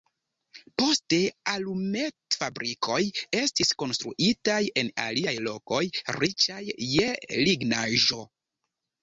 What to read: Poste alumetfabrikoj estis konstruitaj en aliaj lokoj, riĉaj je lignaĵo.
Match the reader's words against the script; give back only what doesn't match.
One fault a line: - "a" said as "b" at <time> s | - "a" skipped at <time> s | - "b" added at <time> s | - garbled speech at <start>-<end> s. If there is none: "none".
none